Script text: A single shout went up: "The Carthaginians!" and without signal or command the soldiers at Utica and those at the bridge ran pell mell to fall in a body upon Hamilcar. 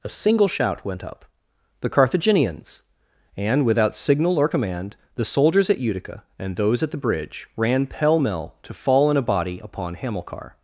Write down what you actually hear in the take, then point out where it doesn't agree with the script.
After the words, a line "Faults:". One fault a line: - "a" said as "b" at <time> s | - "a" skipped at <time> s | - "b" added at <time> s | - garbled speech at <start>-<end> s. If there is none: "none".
A single shout went up: "The Carthaginians!" and without signal or command the soldiers at Utica and those at the bridge ran pell mell to fall in a body upon Hamilcar.
Faults:
none